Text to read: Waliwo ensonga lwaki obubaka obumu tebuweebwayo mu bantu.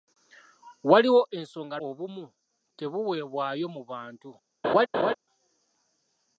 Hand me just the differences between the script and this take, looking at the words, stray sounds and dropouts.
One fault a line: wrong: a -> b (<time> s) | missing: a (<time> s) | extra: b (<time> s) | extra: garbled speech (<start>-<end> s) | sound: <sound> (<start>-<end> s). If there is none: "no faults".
missing: lwaki obubaka (1.8 s)
sound: laugh (4.6-5.1 s)